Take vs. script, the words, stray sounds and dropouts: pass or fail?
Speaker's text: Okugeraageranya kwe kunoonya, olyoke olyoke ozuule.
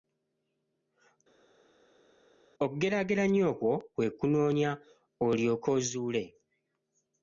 fail